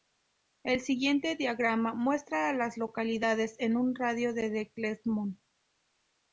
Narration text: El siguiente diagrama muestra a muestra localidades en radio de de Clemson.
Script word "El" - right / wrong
right